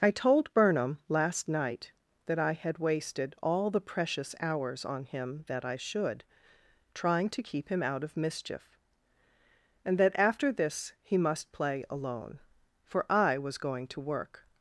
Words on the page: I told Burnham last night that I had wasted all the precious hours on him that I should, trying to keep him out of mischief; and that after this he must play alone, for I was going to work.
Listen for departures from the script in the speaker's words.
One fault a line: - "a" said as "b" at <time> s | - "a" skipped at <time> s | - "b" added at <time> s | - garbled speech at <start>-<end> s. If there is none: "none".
none